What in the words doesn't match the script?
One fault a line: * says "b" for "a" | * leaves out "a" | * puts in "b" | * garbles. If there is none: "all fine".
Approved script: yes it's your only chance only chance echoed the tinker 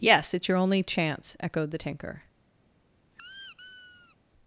* leaves out "only chance"